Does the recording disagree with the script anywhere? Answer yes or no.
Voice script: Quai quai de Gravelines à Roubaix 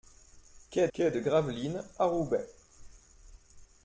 no